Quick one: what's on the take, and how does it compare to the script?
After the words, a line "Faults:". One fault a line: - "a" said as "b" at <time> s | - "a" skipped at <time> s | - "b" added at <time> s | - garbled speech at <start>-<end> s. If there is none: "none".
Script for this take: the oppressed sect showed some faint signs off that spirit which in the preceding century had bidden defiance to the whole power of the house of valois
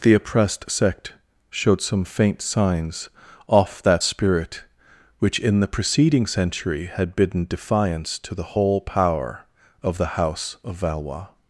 the oppressed sect showed some faint signs off that spirit which in the preceding century had bidden defiance to the whole power of the house of valois
Faults:
none